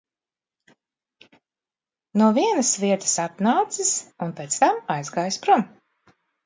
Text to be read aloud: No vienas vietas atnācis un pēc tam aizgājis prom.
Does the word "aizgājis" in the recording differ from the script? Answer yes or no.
no